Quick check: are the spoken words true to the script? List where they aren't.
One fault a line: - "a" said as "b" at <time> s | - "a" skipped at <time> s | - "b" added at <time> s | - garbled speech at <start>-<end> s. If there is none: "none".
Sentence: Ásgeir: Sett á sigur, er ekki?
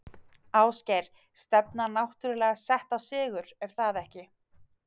- "Stefnan náttúrulega" added at 1.4 s
- "það" added at 3.8 s